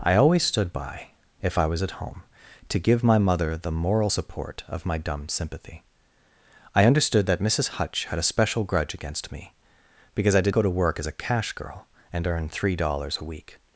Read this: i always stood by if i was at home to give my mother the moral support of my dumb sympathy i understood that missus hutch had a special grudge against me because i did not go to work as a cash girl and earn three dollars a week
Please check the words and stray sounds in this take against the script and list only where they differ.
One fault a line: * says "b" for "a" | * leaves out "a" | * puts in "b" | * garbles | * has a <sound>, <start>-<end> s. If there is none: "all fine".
* leaves out "not"